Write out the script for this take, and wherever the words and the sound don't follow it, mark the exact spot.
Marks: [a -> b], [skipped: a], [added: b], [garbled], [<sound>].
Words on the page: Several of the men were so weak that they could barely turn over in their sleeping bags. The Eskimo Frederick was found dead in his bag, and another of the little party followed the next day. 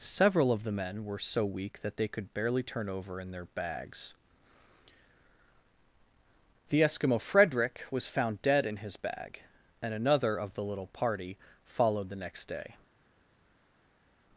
Several of the men were so weak that they could barely turn over in their [skipped: sleeping] bags. The Eskimo Frederick was found dead in his bag, and another of the little party followed the next day.